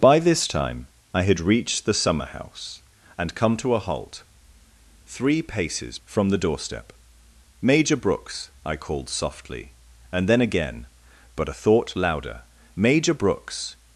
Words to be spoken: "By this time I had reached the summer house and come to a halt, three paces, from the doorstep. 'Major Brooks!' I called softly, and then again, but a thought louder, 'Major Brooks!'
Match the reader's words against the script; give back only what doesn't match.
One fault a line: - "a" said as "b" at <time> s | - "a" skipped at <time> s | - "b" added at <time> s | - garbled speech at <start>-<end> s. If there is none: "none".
none